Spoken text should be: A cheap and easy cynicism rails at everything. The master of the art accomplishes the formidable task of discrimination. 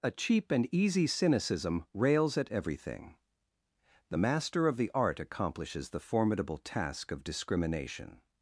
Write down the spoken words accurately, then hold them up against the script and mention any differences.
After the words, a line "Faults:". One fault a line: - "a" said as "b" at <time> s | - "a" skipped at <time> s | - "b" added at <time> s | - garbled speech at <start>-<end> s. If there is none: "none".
A cheap and easy cynicism rails at everything. The master of the art accomplishes the formidable task of discrimination.
Faults:
none